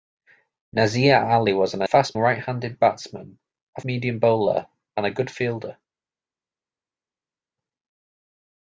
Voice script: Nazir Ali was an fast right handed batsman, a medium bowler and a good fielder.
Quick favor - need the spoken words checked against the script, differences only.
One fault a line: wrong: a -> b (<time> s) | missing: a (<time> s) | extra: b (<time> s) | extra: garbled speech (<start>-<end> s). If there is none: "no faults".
no faults